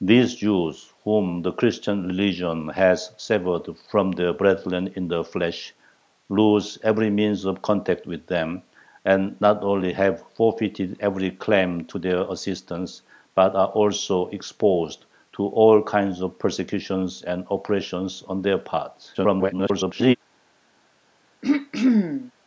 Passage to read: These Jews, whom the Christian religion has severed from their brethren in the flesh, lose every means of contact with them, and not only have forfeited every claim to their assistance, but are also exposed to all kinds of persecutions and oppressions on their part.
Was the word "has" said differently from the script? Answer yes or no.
no